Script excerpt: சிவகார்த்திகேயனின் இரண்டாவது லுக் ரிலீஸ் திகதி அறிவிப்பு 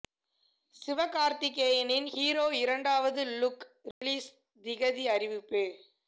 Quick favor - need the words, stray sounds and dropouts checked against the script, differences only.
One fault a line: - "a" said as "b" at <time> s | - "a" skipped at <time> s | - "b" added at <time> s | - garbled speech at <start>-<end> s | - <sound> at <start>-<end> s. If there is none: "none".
- "ஹீரோ" added at 2.0 s
- dropout at 3.9-4.0 s